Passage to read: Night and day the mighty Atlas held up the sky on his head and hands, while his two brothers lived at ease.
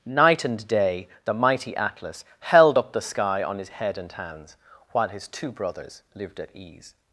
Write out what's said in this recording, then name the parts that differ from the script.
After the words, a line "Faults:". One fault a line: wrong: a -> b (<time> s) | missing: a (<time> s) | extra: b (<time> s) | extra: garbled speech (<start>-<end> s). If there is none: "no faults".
Night and day the mighty Atlas held up the sky on his head and hands, while his two brothers lived at ease.
Faults:
no faults